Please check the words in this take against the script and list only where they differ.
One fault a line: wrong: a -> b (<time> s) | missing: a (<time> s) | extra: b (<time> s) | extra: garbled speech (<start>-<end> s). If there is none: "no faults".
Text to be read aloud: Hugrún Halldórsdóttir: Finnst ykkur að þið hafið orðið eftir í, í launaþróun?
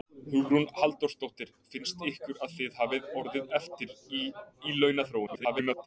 extra: garbled speech (5.3-5.9 s)